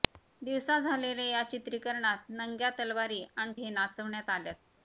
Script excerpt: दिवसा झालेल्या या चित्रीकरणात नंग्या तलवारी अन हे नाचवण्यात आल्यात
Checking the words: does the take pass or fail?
pass